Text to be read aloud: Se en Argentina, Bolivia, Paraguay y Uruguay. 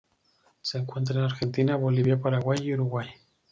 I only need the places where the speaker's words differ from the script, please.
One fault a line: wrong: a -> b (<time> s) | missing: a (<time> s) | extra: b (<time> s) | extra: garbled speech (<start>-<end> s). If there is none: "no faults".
extra: encuentra (0.8 s)